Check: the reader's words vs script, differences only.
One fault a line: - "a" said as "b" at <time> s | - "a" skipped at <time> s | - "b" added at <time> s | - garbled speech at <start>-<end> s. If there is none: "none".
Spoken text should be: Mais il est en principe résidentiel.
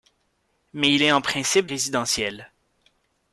none